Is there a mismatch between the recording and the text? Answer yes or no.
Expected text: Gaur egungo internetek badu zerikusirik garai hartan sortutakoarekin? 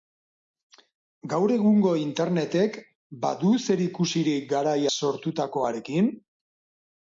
yes